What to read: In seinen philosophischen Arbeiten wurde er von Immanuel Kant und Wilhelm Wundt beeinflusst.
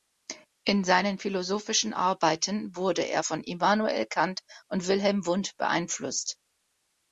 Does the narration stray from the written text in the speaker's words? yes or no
no